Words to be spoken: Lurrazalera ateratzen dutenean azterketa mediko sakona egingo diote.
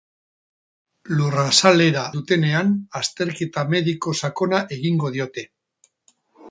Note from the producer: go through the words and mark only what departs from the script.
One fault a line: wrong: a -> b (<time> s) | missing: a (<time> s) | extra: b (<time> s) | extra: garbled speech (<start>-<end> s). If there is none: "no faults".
missing: ateratzen (2.0 s)